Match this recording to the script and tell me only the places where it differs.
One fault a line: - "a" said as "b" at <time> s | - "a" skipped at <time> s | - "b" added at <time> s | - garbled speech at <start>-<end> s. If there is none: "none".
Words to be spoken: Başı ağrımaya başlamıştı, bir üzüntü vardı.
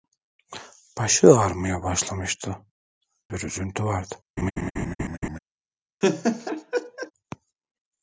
none